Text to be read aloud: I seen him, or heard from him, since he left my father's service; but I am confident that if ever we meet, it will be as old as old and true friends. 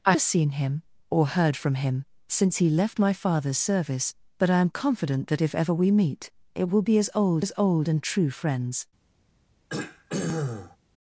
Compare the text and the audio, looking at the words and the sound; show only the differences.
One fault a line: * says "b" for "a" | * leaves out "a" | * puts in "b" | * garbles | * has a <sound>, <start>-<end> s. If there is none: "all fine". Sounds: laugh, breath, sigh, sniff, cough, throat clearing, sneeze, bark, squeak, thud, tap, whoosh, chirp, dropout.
* has a throat clearing, 9.7-10.8 s